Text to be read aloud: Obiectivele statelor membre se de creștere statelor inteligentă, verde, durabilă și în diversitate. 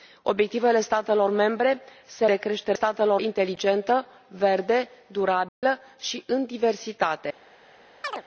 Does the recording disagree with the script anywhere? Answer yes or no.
no